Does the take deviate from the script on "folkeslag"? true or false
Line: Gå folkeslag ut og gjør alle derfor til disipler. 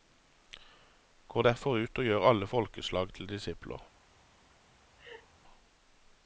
true